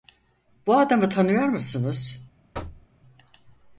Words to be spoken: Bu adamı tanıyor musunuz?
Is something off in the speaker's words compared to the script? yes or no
no